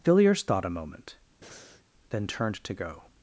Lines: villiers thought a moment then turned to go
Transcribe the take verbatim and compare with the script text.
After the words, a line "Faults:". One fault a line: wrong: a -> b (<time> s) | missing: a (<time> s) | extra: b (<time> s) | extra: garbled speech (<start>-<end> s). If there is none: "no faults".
villiers thought a moment then turned to go
Faults:
no faults